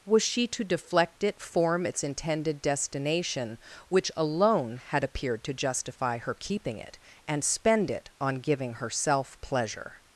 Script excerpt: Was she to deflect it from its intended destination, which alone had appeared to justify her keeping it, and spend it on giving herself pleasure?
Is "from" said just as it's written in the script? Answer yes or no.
no